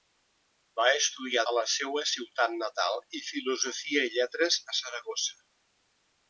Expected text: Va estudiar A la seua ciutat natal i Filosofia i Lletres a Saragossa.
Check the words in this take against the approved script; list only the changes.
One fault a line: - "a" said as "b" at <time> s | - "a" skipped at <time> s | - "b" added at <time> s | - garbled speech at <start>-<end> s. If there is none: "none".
none